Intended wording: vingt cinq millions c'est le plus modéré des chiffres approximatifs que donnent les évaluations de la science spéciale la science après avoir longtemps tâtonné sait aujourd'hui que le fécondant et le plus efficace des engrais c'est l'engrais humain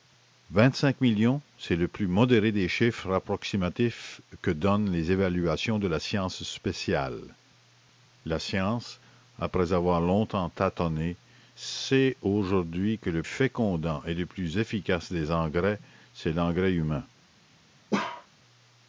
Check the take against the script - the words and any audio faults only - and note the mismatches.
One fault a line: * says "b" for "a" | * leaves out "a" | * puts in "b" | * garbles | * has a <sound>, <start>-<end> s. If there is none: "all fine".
* has a bark, 17.9-18.3 s